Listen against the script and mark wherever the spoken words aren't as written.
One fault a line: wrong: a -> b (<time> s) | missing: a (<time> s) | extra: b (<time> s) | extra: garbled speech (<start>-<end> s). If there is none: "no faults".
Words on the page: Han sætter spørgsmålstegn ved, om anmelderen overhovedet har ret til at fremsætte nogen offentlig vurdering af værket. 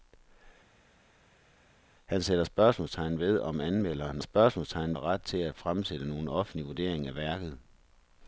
wrong: overhovedet -> spørgsmålstegn (4.2 s)